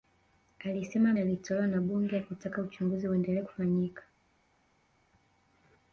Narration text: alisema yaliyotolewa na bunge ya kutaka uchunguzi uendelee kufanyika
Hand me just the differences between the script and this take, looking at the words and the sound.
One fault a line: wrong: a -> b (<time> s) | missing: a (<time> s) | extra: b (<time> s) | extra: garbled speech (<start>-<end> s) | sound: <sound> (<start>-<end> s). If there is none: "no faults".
no faults